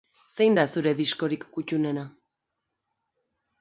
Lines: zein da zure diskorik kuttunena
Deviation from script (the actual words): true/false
false